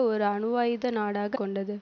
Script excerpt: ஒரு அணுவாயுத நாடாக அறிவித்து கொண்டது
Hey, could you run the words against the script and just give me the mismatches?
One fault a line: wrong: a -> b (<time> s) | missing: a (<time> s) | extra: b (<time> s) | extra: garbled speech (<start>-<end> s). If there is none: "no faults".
missing: அறிவித்து (1.4 s)